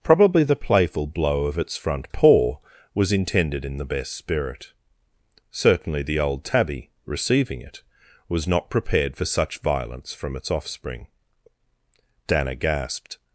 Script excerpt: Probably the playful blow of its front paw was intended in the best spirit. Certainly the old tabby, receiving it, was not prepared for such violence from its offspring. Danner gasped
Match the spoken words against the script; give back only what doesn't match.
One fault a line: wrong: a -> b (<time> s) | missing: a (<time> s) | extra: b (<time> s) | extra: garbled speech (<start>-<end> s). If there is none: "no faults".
no faults